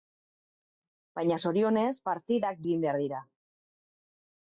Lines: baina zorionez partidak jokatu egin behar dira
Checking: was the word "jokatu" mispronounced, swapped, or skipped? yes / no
yes